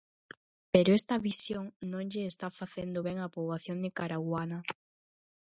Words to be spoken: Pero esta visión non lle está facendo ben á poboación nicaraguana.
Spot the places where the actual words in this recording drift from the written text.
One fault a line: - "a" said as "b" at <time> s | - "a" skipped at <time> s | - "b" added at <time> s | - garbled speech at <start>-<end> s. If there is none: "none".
none